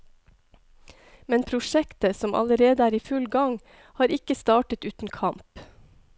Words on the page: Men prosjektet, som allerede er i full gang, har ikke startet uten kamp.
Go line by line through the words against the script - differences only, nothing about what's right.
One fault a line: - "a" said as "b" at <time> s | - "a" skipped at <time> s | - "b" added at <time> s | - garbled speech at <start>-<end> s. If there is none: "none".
none